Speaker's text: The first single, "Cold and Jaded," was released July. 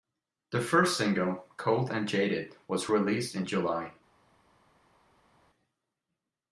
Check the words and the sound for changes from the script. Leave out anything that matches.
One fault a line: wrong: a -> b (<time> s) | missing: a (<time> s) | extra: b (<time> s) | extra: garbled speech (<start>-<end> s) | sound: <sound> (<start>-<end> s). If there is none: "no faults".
extra: in (3.4 s)